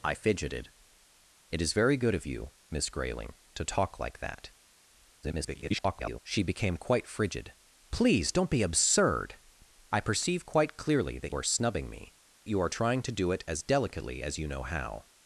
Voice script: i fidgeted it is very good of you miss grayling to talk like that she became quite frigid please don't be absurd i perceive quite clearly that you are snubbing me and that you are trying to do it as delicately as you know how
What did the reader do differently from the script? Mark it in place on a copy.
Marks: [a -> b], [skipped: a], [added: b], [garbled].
i fidgeted it is very good of you miss grayling to talk like that [garbled] she became quite frigid please don't be absurd i perceive quite clearly that [skipped: you] are snubbing me [skipped: and that] you are trying to do it as delicately as you know how